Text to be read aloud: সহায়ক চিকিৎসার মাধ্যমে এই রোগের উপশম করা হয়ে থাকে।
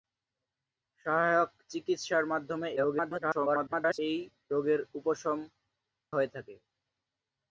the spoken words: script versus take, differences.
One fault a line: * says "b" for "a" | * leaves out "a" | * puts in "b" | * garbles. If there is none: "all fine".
* garbles
* leaves out "করা"